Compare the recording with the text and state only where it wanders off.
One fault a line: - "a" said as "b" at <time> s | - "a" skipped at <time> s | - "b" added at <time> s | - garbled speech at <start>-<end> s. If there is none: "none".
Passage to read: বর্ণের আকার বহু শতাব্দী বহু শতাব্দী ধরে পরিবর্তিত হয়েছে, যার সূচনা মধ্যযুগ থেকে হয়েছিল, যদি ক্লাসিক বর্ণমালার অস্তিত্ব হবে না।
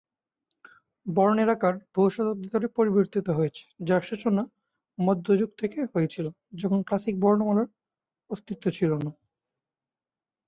- "বহু শতাব্দী" skipped at 2.5 s
- "যদি" said as "যখন" at 6.5 s
- "হবে" said as "ছিল" at 8.7 s